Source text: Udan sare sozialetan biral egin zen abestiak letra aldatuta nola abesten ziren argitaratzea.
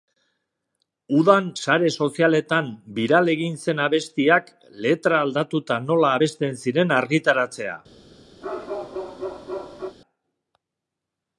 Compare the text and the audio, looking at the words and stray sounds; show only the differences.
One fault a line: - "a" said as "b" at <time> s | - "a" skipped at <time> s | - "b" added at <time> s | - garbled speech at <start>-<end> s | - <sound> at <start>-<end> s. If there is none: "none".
- bark at 8.4-10.0 s